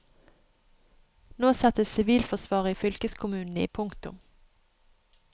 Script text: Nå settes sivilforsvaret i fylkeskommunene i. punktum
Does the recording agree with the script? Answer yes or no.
yes